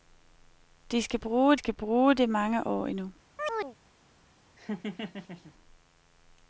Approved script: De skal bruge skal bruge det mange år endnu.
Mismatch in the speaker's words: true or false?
false